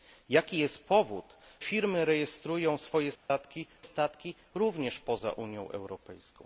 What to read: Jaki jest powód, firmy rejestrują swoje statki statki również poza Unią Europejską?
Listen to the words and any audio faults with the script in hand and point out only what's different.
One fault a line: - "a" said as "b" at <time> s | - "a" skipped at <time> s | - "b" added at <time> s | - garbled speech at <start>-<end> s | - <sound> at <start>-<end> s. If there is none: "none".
- dropout at 3.2-3.3 s